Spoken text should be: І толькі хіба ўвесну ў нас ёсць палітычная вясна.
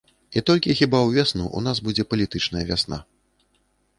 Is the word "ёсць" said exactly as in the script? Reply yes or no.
no